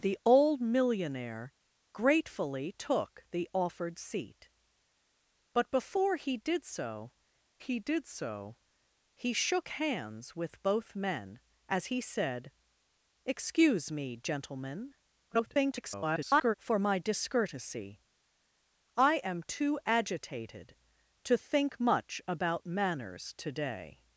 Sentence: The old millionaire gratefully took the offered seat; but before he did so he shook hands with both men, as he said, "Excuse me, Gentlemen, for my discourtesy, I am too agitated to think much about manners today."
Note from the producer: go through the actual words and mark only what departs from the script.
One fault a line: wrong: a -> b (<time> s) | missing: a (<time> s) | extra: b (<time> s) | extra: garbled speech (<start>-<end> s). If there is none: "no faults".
extra: did so he (7.8 s)
extra: garbled speech (15.3-16.5 s)